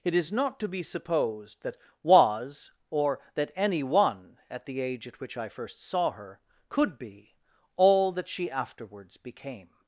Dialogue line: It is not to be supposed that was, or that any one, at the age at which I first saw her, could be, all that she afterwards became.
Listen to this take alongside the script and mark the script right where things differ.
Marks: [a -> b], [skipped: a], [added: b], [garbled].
It is not to be supposed that was, or that any one, at the age at which I first saw her, could be, all that she afterwards became.